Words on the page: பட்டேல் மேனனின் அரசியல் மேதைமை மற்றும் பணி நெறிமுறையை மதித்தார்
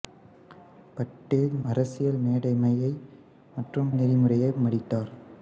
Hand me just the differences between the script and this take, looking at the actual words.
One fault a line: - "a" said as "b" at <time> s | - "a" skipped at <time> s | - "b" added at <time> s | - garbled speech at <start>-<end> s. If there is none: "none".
- "மேனனின்" skipped at 1.5 s
- "பணி" skipped at 3.9 s